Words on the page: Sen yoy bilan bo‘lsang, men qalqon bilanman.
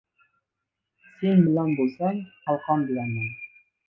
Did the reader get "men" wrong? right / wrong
wrong